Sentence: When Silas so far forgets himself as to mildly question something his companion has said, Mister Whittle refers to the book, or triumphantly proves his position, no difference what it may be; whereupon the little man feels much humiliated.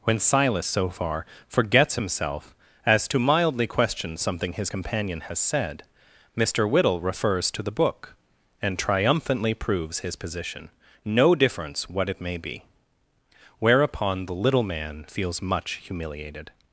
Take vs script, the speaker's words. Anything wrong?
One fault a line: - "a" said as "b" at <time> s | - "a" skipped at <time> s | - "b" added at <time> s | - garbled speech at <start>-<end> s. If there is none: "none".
- "or" said as "and" at 8.6 s